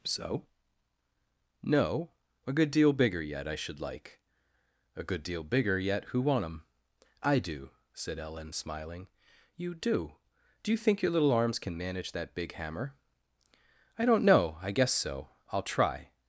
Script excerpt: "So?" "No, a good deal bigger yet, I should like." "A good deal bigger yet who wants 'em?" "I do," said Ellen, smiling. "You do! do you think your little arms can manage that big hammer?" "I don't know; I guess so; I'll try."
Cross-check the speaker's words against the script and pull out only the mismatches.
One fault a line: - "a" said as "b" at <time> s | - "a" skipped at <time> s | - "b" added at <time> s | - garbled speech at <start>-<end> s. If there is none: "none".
- "wants" said as "want" at 6.2 s